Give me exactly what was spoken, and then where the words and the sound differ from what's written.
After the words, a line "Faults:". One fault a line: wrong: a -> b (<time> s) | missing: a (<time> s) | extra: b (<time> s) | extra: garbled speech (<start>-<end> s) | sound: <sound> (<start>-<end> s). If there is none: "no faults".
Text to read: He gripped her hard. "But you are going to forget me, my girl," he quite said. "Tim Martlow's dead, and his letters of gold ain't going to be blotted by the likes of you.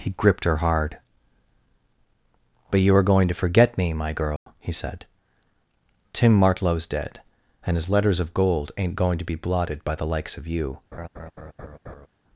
He gripped her hard. "But you are going to forget me, my girl," he said. "Tim Martlow's dead, and his letters of gold ain't going to be blotted by the likes of you.
Faults:
sound: dropout (4.4-4.5 s)
missing: quite (4.7 s)
sound: laugh (10.9-12.1 s)